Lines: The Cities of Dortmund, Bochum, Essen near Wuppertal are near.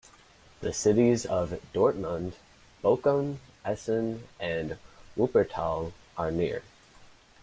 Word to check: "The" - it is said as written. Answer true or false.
true